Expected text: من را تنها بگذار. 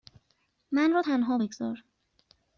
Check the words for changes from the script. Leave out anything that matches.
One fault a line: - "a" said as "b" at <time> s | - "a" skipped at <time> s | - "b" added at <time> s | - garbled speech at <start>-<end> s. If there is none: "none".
none